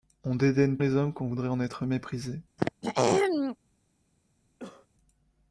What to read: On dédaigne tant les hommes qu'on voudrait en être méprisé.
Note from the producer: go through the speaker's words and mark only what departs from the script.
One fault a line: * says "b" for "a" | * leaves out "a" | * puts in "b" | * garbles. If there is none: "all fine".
* leaves out "tant"